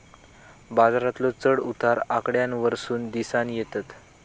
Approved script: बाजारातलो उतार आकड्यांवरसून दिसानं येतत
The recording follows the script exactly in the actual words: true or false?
false